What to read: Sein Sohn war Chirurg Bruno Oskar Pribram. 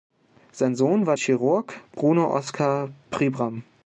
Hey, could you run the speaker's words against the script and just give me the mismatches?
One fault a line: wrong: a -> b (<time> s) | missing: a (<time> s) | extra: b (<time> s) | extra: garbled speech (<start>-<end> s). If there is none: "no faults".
no faults